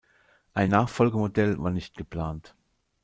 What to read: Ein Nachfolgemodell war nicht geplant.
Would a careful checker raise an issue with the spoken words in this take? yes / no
no